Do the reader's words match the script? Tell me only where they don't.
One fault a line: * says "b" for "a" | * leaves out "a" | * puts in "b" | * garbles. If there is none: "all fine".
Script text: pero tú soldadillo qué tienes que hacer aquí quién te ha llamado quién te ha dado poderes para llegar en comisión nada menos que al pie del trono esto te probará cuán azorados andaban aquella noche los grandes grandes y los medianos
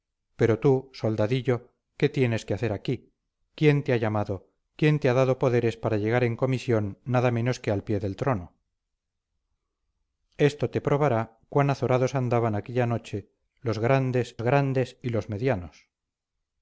all fine